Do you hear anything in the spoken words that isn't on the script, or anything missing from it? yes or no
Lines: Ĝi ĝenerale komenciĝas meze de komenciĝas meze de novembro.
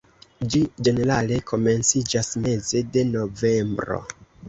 yes